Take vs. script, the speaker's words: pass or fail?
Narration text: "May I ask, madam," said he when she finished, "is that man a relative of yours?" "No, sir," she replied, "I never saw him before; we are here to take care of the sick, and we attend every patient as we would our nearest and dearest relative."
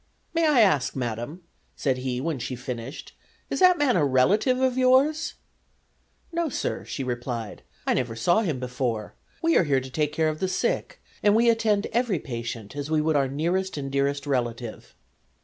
pass